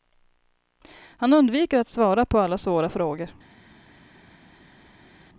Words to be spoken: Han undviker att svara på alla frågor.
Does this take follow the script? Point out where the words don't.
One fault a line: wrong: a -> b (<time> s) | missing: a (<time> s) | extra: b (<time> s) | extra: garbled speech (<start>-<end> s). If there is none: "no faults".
extra: svåra (2.6 s)